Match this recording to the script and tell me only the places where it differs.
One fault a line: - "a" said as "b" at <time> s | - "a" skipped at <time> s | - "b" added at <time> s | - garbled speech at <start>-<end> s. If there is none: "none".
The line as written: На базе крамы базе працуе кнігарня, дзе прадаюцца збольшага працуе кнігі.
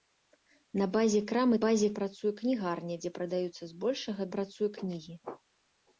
none